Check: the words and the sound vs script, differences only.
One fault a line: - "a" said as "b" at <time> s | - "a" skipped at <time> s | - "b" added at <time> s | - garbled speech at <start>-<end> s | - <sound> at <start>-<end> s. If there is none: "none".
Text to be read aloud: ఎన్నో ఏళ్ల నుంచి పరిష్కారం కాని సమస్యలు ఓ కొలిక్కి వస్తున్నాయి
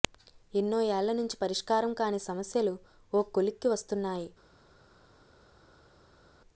none